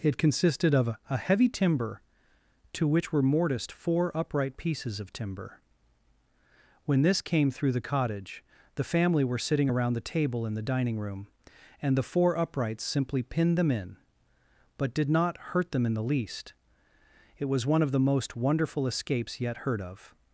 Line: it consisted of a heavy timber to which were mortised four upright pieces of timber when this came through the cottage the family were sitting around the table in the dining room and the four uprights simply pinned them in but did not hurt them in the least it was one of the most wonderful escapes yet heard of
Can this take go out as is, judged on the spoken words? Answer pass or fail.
pass